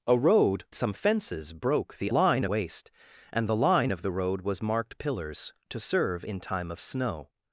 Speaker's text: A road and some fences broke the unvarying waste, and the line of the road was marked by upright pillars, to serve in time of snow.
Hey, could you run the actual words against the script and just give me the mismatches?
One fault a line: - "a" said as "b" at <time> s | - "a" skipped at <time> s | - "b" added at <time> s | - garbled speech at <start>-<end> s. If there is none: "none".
- "and" skipped at 0.7 s
- "unvarying" said as "line" at 2.1 s
- "by upright" skipped at 5.0 s